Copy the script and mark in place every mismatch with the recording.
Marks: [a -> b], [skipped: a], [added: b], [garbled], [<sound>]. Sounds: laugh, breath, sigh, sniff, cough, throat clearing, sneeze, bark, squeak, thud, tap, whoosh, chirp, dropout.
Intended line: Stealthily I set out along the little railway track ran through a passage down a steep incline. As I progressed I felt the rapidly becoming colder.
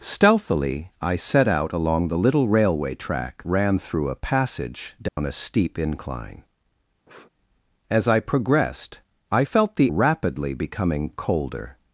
Stealthily I set out along the little railway track ran through a passage down [dropout] a steep incline. [sniff] As I progressed I felt the rapidly becoming colder.